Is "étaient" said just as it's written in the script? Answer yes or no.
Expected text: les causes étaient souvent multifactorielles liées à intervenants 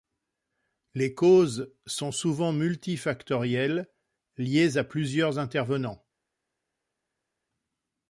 no